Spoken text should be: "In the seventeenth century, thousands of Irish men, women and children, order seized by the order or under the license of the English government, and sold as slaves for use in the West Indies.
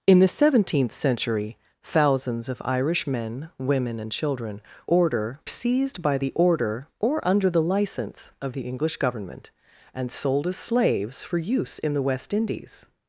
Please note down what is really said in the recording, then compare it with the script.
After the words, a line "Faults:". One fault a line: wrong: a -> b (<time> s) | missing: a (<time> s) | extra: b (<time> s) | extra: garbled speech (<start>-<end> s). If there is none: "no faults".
"In the seventeenth century, thousands of Irish men, women and children, order seized by the order or under the license of the English government, and sold as slaves for use in the West Indies.
Faults:
no faults